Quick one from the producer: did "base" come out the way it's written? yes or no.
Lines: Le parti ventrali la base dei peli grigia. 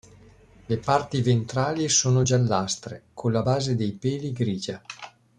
yes